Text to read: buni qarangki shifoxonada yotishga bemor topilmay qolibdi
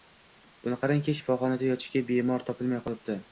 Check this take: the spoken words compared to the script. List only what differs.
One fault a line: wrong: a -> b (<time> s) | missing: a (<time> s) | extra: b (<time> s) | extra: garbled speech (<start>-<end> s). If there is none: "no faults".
no faults